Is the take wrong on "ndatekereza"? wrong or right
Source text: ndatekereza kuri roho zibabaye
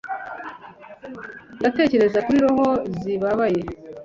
right